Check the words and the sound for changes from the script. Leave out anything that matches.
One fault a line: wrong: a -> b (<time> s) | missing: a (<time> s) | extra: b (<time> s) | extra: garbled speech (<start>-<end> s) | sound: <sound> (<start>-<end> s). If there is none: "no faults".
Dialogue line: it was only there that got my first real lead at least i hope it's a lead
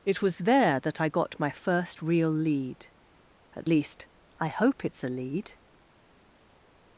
missing: only (0.4 s)
extra: i (1.0 s)